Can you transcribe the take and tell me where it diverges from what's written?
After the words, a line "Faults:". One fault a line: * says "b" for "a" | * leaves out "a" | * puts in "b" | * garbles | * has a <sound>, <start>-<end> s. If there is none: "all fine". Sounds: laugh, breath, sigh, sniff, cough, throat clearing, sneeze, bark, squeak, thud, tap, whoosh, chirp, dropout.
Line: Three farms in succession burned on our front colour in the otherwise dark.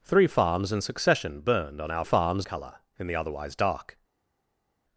Three farms in succession burned on our farms colour in the otherwise dark.
Faults:
* says "farms" for "front"